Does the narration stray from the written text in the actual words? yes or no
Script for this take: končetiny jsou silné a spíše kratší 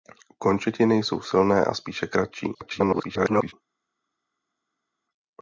yes